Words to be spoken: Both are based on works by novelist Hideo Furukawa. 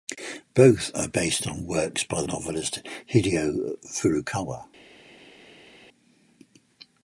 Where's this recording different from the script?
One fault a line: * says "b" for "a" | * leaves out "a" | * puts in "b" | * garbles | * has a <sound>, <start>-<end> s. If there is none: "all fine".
all fine